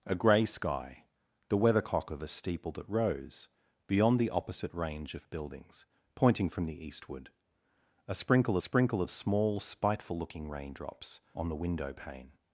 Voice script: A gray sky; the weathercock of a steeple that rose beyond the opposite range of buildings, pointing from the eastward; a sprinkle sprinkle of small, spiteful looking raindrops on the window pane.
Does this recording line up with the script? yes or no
yes